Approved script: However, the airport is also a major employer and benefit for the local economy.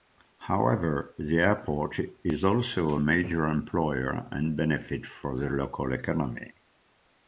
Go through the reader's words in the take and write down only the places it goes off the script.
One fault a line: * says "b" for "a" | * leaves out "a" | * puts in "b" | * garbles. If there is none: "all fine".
all fine